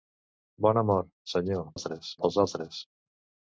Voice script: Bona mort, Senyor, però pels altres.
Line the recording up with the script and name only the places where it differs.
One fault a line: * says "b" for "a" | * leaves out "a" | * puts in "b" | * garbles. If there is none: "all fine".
* says "altres" for "però"